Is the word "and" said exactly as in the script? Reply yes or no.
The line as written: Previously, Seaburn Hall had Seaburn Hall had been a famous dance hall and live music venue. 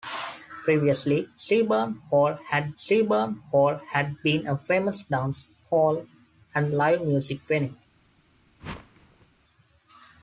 yes